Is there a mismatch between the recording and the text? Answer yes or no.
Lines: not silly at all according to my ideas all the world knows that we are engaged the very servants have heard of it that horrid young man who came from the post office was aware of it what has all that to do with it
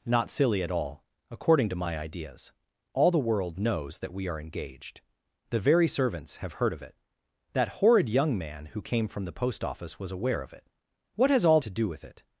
yes